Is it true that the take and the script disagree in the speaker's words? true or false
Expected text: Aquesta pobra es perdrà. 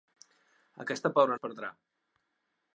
false